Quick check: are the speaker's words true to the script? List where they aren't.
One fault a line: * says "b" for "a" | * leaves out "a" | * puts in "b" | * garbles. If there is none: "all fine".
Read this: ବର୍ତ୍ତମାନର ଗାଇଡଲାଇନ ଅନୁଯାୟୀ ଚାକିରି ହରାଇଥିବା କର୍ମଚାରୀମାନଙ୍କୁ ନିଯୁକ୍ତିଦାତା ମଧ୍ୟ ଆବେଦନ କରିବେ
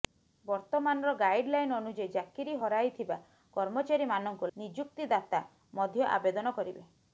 all fine